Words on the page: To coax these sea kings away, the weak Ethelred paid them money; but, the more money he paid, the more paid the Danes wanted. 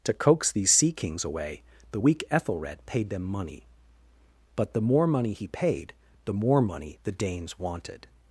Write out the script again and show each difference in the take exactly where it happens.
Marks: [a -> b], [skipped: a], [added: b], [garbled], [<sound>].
To coax these sea kings away, the weak Ethelred paid them money; but, the more money he paid, the more [paid -> money] the Danes wanted.